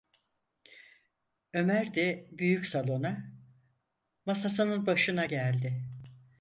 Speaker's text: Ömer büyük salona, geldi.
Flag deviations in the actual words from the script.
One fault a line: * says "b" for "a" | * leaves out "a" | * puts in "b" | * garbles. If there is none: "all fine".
* puts in "de"
* puts in "masasının başına"